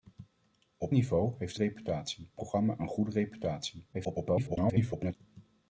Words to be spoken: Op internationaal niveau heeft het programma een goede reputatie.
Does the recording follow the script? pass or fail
fail